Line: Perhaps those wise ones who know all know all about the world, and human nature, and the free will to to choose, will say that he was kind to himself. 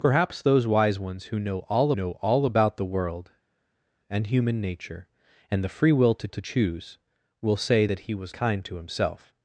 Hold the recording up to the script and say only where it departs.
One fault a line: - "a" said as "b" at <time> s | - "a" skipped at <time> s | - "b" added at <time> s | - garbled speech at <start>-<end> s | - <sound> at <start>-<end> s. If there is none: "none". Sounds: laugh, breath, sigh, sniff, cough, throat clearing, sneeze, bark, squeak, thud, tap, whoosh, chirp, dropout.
none